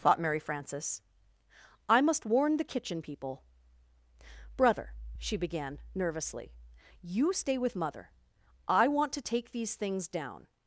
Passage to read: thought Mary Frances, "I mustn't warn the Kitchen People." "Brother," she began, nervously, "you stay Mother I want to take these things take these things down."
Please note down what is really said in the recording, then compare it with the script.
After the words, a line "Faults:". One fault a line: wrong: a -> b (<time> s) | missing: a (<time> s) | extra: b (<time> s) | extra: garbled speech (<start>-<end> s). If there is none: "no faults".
thought Mary Frances, "I must warn the Kitchen People." "Brother," she began, nervously, "you stay with Mother I want to take these things down."
Faults:
wrong: mustn't -> must (2.0 s)
extra: with (7.6 s)
missing: take these things (10.1 s)